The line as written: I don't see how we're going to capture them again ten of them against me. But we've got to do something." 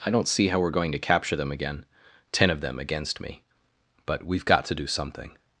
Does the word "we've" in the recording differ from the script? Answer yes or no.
no